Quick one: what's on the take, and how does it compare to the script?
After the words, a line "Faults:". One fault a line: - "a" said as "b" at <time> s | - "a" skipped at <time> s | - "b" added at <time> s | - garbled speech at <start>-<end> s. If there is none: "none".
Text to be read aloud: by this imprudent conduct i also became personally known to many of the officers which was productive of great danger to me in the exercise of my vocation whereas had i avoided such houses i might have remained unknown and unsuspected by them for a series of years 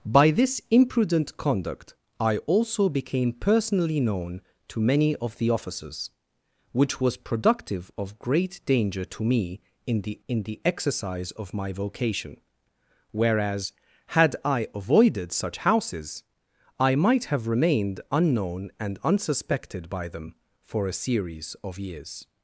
by this imprudent conduct i also became personally known to many of the officers which was productive of great danger to me in the in the exercise of my vocation whereas had i avoided such houses i might have remained unknown and unsuspected by them for a series of years
Faults:
- "in the" added at 10.3 s